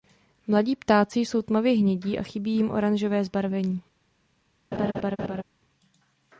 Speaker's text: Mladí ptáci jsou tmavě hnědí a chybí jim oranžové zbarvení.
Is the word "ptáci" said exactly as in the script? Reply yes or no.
yes